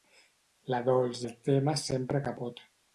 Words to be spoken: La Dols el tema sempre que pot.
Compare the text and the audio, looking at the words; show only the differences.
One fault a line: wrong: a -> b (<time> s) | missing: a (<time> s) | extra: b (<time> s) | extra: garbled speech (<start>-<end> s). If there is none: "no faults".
no faults